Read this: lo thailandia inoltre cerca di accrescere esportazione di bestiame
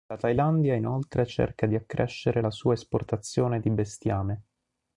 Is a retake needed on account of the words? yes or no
yes